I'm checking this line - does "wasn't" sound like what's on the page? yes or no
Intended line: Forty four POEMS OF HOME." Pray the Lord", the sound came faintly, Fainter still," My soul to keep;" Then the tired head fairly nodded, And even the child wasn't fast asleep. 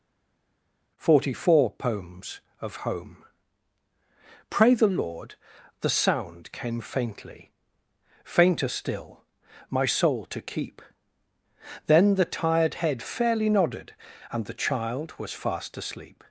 no